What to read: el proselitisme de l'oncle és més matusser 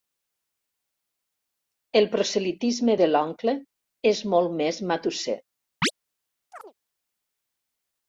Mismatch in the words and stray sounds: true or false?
true